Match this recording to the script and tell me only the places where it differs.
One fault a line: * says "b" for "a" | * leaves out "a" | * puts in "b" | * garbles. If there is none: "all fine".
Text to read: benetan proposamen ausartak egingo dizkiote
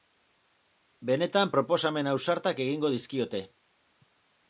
all fine